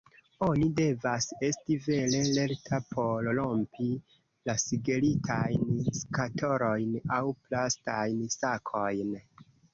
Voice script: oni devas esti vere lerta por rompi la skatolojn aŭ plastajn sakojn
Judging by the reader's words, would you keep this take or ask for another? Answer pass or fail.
fail